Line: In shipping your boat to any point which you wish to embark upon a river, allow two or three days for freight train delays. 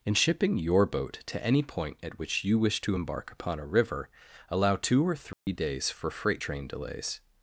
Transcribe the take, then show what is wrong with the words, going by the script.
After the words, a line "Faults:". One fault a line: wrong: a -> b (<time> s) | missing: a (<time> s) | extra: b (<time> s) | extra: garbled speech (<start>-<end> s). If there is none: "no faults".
In shipping your boat to any point at which you wish to embark upon a river, allow two or three days for freight train delays.
Faults:
extra: at (2.0 s)